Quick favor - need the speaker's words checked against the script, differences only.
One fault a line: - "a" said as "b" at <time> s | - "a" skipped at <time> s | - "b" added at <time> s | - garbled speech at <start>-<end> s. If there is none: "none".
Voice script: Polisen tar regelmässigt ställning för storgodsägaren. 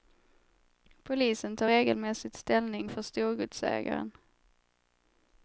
none